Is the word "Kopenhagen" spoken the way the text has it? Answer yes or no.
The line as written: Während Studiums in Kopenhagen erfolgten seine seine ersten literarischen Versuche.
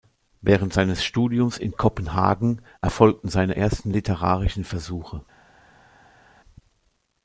yes